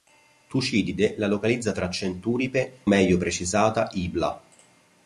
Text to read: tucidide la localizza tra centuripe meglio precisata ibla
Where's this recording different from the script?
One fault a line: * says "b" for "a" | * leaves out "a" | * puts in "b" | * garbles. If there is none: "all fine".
all fine